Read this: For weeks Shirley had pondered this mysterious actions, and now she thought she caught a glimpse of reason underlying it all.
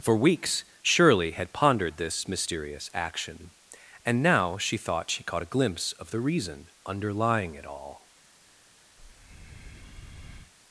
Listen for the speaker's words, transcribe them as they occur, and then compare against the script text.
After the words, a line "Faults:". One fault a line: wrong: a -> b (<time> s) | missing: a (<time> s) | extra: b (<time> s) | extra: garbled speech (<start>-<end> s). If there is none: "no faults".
For weeks Shirley had pondered this mysterious action, and now she thought she caught a glimpse of the reason underlying it all.
Faults:
wrong: actions -> action (2.9 s)
extra: the (6.1 s)